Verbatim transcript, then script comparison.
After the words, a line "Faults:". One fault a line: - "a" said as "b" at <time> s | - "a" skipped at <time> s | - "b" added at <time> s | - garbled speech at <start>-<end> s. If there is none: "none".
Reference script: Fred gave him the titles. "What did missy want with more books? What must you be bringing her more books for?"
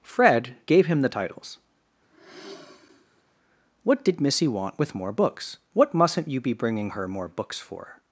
Fred gave him the titles. "What did missy want with more books? What mustn't you be bringing her more books for?"
Faults:
- "must" said as "mustn't" at 5.9 s